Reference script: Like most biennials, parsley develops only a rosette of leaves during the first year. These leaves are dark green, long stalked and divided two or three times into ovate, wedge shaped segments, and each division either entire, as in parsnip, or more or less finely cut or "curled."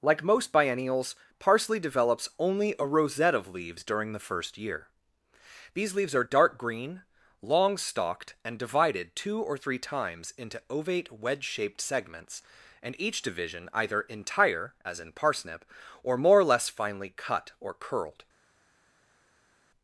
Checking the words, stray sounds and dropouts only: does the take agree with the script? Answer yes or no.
yes